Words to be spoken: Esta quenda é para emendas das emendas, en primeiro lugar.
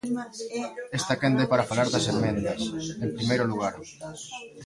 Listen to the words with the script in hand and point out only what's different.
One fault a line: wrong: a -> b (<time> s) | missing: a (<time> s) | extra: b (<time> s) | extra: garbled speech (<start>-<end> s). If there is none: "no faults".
wrong: emendas -> falar (1.7 s)